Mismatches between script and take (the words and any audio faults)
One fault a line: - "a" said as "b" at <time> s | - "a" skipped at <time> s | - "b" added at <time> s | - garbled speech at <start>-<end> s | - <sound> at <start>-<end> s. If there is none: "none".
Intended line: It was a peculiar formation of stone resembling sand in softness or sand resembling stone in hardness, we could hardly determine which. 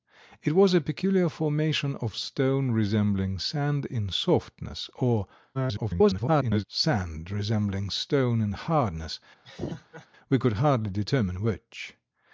- garbled speech at 5.5-6.6 s
- laugh at 9.4-10.1 s